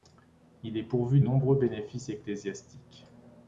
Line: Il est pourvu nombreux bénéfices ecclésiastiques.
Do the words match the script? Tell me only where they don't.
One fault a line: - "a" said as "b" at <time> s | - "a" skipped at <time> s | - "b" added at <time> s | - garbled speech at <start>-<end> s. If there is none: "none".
none